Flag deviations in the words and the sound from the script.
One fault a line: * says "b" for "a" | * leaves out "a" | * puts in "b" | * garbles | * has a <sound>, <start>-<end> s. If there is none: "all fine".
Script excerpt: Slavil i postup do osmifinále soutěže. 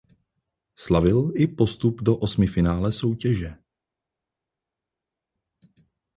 all fine